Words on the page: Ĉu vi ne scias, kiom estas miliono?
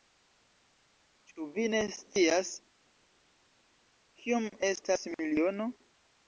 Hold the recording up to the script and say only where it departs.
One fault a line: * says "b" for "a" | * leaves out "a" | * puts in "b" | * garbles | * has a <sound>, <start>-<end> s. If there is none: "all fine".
all fine